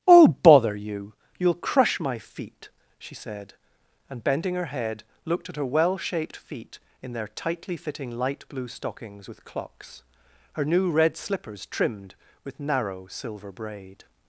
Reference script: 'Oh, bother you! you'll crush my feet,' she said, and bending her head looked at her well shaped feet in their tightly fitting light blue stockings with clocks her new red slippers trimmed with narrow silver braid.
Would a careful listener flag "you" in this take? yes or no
no